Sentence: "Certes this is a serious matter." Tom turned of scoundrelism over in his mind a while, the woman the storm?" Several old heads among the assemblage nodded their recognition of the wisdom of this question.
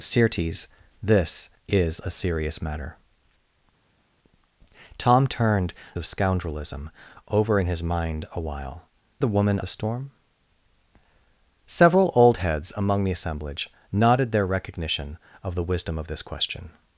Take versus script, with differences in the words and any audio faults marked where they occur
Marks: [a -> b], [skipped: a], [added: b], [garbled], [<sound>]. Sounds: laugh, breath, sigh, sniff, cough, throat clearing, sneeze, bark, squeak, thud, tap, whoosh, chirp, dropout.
"Certes this is a serious matter." Tom turned of scoundrelism over in his mind a while, the woman the storm?" Several old heads among the assemblage nodded their recognition of the wisdom of this question.